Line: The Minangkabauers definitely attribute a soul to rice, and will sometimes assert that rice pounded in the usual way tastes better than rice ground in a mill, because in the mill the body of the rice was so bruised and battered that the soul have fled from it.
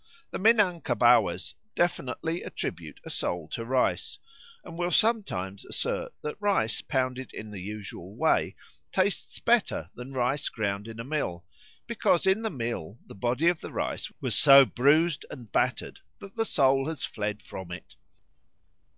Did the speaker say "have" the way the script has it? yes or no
no